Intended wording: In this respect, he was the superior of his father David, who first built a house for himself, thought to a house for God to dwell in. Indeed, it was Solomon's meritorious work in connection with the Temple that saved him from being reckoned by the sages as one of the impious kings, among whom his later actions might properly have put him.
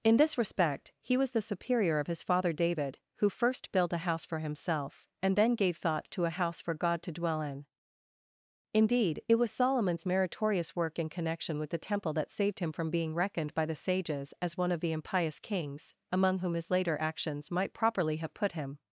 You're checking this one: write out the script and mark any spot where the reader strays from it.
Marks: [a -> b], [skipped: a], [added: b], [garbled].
In this respect, he was the superior of his father David, who first built a house for himself, [added: and then gave] thought to a house for God to dwell in. Indeed, it was Solomon's meritorious work in connection with the Temple that saved him from being reckoned by the sages as one of the impious kings, among whom his later actions might properly have put him.